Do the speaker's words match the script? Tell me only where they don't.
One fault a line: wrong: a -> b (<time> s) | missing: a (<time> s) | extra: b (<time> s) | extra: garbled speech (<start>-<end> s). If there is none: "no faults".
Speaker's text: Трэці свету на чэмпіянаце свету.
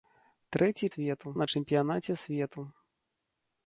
no faults